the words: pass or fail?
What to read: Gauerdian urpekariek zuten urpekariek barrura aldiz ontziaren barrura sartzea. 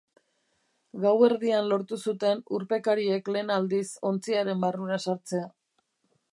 fail